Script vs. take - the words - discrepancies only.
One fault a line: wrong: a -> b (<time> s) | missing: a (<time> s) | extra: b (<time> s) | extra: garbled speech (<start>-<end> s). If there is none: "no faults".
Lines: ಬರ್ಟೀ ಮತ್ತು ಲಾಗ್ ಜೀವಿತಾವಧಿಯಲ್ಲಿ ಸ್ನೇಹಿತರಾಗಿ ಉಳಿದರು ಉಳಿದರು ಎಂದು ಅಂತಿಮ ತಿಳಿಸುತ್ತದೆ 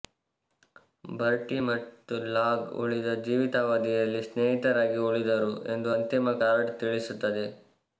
extra: ಉಳಿದ (2.8 s)
missing: ಉಳಿದರು (5.5 s)
extra: ಕಾರ್ಡ್ (6.4 s)